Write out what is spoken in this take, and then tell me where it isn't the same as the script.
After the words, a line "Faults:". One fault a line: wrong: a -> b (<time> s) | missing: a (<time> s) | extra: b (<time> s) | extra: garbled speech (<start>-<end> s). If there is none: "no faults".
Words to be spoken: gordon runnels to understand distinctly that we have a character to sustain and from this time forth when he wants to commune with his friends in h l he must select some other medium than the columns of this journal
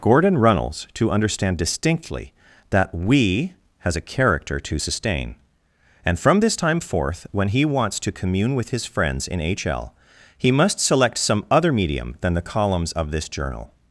gordon runnels to understand distinctly that we has a character to sustain and from this time forth when he wants to commune with his friends in h l he must select some other medium than the columns of this journal
Faults:
wrong: have -> has (3.8 s)